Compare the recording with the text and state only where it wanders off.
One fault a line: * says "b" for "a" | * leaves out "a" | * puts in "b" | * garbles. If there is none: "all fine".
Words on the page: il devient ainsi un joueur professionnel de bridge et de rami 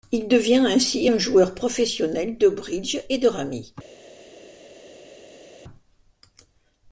all fine